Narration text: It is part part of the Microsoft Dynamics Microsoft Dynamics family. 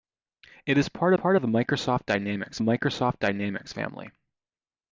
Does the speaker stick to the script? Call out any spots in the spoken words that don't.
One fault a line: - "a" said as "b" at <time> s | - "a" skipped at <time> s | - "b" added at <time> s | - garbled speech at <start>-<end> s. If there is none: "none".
none